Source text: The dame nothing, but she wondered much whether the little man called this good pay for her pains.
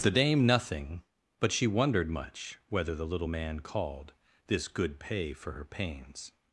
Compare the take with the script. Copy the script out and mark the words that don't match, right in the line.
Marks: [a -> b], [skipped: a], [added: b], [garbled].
The dame nothing, but she wondered much whether the little man called this good pay for her pains.